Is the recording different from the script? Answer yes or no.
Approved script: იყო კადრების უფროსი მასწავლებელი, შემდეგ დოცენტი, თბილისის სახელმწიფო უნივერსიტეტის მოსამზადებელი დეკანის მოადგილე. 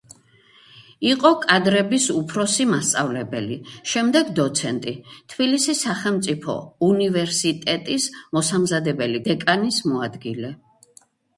no